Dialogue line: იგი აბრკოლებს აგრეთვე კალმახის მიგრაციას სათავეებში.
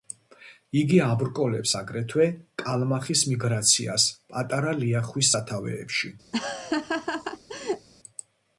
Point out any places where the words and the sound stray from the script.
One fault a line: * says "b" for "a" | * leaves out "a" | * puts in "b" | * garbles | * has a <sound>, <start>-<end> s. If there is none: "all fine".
* puts in "პატარა ლიახვის"
* has a laugh, 6.3-7.9 s